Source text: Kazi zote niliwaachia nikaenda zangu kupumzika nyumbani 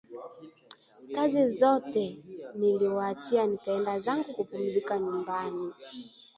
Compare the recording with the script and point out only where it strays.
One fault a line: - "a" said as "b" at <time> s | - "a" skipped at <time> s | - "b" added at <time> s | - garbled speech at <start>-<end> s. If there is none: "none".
none